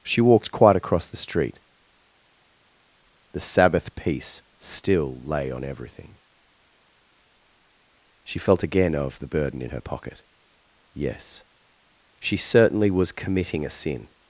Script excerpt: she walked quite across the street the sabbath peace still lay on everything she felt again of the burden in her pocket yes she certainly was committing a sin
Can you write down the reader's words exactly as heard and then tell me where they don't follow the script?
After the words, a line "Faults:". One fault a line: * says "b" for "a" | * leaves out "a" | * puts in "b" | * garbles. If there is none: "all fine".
she walked quite across the street the sabbath peace still lay on everything she felt again of the burden in her pocket yes she certainly was committing a sin
Faults:
all fine